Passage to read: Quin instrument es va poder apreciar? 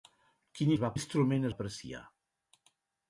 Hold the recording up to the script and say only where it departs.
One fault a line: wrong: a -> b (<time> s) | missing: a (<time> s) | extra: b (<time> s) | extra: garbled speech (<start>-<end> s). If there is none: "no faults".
missing: instrument (0.7 s)
wrong: poder -> instrument (0.9 s)